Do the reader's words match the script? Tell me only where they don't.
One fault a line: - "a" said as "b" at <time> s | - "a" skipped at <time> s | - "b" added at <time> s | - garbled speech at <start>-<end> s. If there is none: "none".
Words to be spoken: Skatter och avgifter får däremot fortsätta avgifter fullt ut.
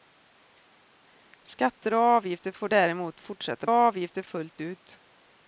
none